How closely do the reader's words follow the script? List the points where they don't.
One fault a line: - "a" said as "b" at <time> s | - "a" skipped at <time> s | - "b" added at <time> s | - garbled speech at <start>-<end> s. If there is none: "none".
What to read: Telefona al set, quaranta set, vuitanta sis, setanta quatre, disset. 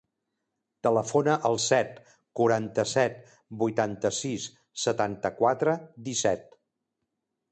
none